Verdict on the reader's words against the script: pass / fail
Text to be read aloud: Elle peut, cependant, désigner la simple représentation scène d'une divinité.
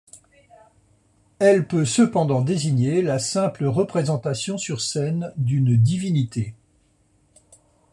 fail